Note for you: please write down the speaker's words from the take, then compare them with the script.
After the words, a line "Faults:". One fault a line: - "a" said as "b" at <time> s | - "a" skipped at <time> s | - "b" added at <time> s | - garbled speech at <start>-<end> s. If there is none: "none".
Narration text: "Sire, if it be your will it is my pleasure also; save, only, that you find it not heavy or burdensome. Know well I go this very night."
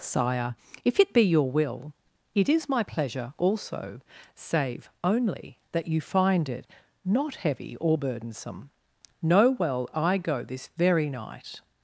"Sire, if it be your will it is my pleasure also; save, only, that you find it not heavy or burdensome. Know well I go this very night."
Faults:
none